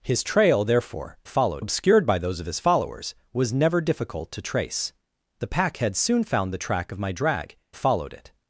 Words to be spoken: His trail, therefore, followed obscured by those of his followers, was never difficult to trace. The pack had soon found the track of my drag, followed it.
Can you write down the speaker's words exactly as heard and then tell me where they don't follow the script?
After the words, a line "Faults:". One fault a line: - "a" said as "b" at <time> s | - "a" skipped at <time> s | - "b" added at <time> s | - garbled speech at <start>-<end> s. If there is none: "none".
His trail, therefore, followed obscured by those of his followers, was never difficult to trace. The pack had soon found the track of my drag, followed it.
Faults:
none